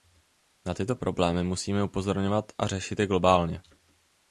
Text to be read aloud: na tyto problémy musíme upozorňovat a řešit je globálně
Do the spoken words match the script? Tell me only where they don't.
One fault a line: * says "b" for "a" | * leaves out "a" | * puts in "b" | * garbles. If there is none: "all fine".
all fine